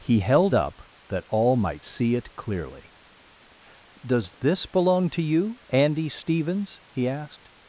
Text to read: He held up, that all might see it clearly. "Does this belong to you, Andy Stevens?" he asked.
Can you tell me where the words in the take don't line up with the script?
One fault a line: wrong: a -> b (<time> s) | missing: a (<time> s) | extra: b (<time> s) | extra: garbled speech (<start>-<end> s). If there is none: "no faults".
no faults